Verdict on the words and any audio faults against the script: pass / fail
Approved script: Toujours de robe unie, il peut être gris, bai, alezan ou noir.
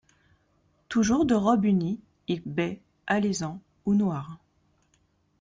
fail